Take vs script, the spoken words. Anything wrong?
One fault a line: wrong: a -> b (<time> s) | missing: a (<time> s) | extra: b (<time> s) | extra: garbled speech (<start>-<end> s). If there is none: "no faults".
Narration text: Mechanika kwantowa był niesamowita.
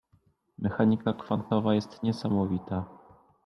wrong: był -> jest (1.8 s)